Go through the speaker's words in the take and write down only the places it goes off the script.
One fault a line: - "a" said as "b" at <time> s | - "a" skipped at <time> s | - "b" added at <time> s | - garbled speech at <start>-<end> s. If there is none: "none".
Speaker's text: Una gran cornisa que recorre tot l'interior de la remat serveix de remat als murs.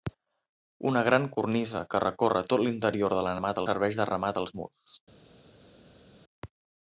none